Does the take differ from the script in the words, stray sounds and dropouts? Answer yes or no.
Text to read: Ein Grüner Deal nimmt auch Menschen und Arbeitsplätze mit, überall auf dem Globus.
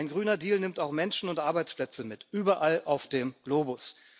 no